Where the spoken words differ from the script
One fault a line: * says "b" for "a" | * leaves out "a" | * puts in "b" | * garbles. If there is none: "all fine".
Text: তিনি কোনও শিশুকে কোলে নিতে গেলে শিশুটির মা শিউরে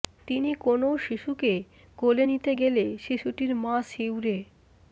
all fine